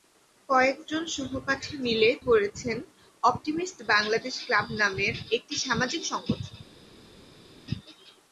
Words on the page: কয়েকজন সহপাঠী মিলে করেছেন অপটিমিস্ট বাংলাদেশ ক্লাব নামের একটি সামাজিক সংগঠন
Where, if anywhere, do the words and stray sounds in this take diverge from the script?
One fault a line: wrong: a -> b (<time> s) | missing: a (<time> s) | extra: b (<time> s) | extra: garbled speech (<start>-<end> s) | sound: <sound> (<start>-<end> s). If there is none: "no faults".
no faults